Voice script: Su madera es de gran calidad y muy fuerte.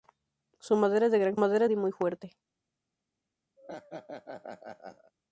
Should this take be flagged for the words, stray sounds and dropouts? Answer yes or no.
yes